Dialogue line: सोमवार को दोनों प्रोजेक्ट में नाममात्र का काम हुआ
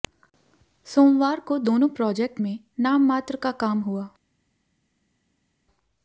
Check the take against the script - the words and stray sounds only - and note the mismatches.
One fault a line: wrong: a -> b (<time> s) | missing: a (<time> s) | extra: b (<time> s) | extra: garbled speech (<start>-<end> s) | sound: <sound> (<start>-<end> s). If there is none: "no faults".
no faults